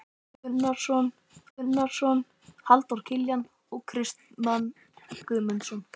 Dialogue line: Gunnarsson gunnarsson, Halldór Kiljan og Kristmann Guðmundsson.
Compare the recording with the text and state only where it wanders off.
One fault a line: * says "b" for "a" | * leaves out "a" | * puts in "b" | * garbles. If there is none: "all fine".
all fine